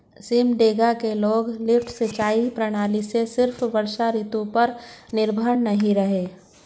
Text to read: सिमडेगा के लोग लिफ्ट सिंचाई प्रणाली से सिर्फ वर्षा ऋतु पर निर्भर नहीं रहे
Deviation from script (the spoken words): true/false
false